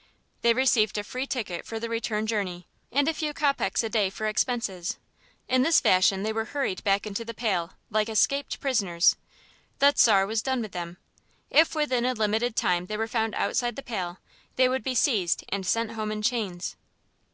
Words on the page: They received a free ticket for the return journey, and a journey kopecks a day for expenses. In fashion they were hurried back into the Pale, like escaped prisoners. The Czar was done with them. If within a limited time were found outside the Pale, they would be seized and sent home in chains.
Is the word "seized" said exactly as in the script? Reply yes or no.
yes